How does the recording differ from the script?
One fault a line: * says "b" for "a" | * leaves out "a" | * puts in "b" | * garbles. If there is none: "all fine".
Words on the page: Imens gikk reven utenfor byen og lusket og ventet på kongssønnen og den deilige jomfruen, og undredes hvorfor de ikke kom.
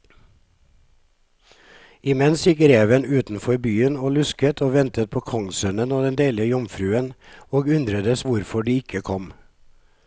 all fine